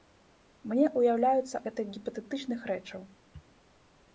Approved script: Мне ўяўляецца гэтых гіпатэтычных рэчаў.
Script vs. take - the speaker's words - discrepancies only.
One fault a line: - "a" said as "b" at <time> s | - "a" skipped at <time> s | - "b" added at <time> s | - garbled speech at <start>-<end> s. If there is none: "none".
none